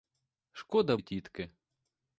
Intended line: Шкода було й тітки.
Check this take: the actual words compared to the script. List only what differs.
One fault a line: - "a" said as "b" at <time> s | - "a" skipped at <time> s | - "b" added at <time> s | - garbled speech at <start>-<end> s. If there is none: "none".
- "було" skipped at 1.0 s